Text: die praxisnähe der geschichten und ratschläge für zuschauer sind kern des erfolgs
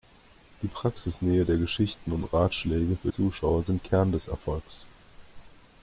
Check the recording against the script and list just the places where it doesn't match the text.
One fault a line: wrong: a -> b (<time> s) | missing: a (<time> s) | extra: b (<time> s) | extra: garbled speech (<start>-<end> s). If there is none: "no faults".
no faults